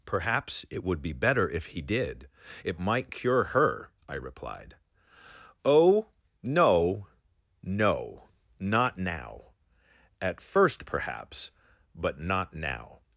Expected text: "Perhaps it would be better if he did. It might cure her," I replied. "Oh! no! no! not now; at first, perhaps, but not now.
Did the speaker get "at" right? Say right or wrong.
right